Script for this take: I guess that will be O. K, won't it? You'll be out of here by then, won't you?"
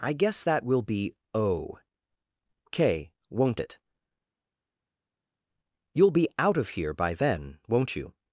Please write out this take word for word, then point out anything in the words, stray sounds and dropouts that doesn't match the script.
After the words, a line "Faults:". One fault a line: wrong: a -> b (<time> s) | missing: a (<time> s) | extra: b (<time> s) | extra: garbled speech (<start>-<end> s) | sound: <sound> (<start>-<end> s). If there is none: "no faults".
I guess that will be O. K, won't it? You'll be out of here by then, won't you?"
Faults:
no faults